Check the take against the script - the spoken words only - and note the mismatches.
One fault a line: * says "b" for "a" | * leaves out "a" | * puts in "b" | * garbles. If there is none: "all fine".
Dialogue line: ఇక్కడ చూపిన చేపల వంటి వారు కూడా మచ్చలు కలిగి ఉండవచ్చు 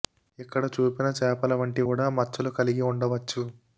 * leaves out "వారు"